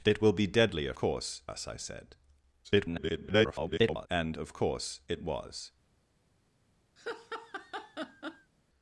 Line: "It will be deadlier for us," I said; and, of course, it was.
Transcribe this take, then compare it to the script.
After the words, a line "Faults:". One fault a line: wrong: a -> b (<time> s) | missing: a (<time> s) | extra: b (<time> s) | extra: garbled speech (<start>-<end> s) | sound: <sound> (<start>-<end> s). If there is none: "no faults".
"It will be deadlier course us," I said; [garbled] and, of course, it was.
Faults:
wrong: for -> course (0.9 s)
extra: garbled speech (2.6-4.1 s)
sound: laugh (7.0-8.5 s)